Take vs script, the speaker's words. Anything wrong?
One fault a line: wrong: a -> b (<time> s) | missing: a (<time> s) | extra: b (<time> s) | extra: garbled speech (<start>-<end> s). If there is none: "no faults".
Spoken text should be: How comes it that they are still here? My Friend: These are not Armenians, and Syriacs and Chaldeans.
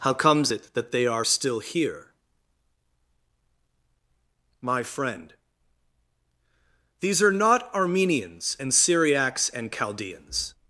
no faults